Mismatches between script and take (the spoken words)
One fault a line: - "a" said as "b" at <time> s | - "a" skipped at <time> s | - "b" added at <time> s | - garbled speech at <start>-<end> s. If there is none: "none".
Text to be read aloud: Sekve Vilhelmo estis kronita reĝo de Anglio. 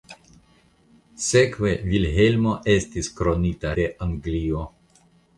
- "reĝo" skipped at 3.8 s